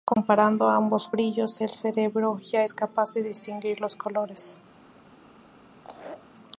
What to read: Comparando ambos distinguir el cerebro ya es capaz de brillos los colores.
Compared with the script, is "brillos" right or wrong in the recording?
wrong